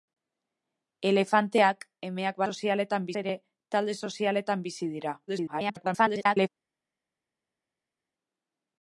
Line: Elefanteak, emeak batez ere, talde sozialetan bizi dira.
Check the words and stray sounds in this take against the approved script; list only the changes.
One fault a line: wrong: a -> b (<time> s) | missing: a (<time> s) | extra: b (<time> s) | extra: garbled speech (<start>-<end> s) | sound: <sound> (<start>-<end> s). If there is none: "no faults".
wrong: batez -> sozialetan (2.5 s)
extra: garbled speech (5.3-6.5 s)